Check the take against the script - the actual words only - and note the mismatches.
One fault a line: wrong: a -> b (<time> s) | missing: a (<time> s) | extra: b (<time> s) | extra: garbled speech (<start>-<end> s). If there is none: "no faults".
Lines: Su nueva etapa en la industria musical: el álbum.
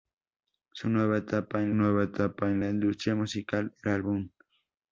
extra: nueva etapa en (1.7 s)